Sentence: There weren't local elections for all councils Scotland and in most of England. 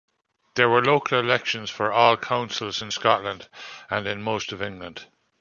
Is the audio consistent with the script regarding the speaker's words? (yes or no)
no